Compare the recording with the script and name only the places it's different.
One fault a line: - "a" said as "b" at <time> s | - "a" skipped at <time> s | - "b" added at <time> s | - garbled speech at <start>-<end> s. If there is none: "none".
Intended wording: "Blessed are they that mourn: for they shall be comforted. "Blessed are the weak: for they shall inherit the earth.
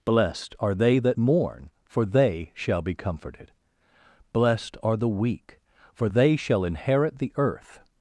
none